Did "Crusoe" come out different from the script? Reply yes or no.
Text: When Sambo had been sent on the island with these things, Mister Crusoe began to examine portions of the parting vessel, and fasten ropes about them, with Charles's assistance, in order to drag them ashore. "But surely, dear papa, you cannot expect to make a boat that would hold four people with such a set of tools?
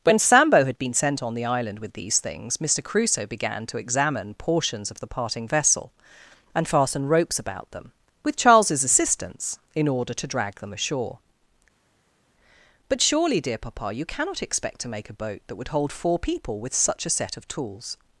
no